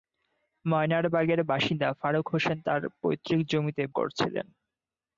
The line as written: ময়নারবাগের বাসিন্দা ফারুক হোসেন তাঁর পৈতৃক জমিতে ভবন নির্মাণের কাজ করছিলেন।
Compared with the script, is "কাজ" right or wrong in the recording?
wrong